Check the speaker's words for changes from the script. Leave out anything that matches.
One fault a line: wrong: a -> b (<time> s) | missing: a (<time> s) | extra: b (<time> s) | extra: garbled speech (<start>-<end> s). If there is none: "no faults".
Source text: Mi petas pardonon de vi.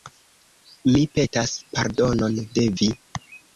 no faults